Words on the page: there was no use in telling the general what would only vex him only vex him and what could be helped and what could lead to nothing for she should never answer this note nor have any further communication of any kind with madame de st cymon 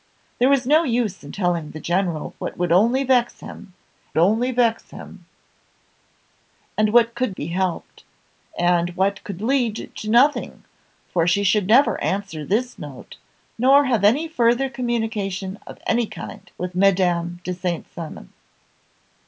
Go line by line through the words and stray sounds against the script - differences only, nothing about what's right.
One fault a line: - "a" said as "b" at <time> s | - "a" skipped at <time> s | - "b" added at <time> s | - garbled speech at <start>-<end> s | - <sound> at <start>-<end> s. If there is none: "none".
none